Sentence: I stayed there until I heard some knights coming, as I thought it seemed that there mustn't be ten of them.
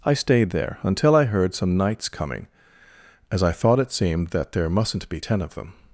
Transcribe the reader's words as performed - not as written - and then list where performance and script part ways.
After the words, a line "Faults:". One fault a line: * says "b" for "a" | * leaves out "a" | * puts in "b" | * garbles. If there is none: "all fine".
I stayed there until I heard some knights coming, as I thought it seemed that there mustn't be ten of them.
Faults:
all fine